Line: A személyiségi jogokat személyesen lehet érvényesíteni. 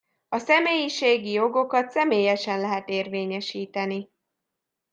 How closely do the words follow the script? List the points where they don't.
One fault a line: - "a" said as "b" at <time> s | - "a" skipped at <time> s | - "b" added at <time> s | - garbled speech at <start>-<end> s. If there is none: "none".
none